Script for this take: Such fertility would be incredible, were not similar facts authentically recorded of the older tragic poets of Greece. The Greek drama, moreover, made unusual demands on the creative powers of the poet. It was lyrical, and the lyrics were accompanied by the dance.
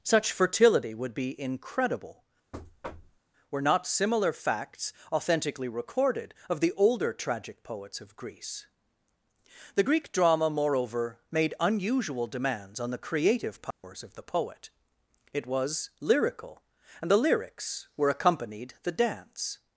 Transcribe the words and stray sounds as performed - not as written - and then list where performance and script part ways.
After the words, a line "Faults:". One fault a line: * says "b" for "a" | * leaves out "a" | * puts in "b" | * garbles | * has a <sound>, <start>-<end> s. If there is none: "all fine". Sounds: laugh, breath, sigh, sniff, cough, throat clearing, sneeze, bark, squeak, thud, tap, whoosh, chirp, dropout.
Such fertility would be incredible, were not similar facts authentically recorded of the older tragic poets of Greece. The Greek drama, moreover, made unusual demands on the creative powers of the poet. It was lyrical, and the lyrics were accompanied the dance.
Faults:
* has a thud, 2.5-3.2 s
* has a dropout, 13.7-13.8 s
* leaves out "by"